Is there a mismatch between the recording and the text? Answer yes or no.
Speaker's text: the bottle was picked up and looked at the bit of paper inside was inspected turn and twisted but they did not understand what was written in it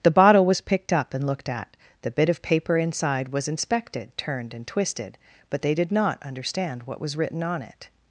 yes